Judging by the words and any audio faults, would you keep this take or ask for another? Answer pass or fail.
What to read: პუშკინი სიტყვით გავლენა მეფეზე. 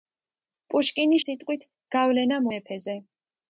pass